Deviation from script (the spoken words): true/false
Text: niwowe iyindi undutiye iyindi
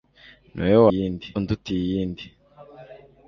false